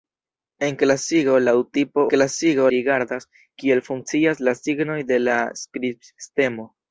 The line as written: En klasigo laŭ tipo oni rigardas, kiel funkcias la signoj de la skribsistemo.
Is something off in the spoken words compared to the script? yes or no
yes